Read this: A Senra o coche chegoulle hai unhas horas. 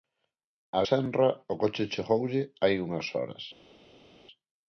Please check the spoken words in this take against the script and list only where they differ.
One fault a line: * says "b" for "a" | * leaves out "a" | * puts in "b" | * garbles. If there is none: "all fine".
all fine